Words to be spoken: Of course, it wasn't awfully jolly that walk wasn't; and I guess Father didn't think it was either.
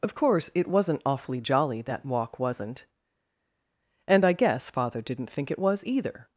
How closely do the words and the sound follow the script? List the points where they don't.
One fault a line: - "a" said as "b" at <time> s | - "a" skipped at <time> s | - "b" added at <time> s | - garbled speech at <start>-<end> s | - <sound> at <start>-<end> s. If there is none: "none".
none